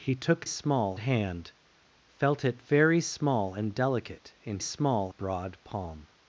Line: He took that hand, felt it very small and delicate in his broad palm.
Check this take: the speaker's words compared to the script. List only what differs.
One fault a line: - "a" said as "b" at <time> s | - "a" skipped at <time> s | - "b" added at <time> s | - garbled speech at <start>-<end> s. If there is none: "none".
- "that" said as "small" at 0.4 s
- "his" said as "small" at 4.6 s